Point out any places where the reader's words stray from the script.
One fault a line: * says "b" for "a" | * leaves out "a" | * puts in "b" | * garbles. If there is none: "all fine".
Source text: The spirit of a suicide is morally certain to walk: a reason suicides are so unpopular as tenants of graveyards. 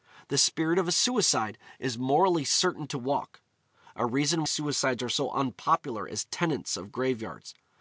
all fine